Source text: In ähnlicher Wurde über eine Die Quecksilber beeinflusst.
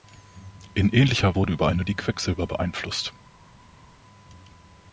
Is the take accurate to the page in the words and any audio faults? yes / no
yes